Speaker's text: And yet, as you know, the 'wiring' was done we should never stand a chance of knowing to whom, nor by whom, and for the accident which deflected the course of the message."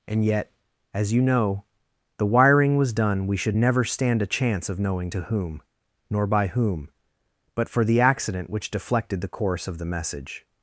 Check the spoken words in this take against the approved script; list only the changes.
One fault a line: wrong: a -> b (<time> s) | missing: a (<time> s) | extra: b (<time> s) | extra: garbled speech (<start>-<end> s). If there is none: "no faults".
wrong: and -> but (7.6 s)